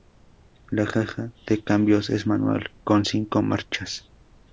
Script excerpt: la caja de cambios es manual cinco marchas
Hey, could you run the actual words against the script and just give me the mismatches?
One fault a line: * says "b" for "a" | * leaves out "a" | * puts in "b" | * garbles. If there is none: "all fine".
* puts in "con"